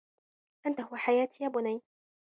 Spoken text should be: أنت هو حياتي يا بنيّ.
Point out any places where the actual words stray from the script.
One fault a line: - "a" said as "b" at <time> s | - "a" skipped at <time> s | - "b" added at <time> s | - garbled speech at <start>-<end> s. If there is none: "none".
none